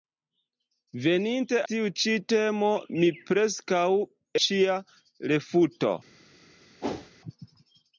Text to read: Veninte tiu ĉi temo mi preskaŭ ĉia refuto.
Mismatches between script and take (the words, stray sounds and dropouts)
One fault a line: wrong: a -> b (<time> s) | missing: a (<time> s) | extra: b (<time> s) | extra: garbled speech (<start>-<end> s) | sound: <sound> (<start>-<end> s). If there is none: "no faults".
sound: whoosh (6.8-7.1 s)